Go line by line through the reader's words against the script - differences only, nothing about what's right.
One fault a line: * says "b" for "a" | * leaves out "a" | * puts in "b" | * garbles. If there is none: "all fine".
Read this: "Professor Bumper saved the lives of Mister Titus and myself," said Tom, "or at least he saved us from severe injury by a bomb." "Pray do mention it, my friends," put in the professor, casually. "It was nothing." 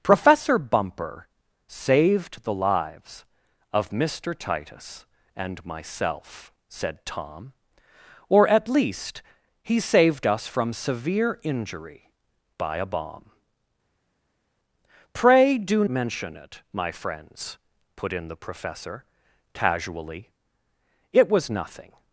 all fine